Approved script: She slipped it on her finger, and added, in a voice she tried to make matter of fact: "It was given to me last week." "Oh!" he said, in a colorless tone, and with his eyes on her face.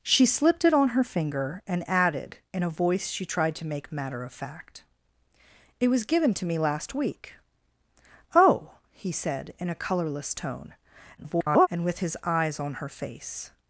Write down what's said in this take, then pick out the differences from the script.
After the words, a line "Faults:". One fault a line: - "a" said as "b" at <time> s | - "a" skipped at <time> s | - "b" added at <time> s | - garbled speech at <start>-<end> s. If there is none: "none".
She slipped it on her finger, and added, in a voice she tried to make matter of fact: "It was given to me last week." "Oh!" he said, in a colorless tone, [garbled] and with his eyes on her face.
Faults:
- garbled speech at 11.2-11.7 s